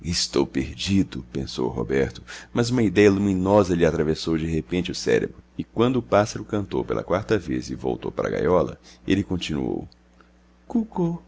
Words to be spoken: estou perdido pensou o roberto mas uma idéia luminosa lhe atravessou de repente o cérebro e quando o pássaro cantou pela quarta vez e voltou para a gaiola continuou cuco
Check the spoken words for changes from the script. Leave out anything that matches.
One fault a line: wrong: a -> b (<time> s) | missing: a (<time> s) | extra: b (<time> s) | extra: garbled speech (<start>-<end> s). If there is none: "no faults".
extra: ele (9.1 s)